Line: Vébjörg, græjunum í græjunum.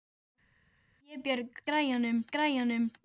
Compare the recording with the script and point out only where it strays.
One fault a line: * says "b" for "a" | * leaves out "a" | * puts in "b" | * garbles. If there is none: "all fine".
all fine